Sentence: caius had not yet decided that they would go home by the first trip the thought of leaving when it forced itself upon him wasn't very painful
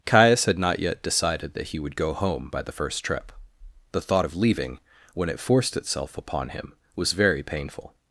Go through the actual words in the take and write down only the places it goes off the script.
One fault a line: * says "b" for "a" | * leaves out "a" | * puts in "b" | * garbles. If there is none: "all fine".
* says "he" for "they"
* says "was" for "wasn't"